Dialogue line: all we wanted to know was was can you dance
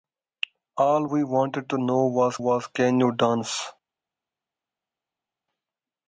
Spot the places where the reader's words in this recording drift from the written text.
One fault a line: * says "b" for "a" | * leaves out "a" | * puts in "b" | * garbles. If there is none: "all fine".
all fine